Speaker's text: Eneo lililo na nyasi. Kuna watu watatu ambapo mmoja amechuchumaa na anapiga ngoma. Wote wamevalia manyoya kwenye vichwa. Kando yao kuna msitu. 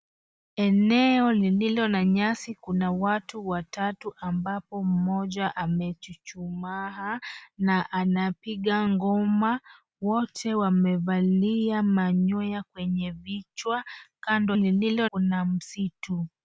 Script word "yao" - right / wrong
wrong